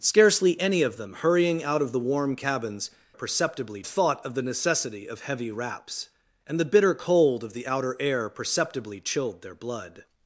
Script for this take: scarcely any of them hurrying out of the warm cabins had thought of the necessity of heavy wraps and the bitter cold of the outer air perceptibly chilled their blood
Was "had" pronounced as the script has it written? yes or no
no